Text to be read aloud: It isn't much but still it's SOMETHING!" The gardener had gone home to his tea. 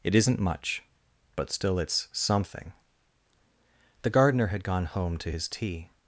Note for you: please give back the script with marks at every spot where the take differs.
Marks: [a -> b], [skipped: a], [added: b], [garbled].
It isn't much but still it's SOMETHING!" The gardener had gone home to his tea.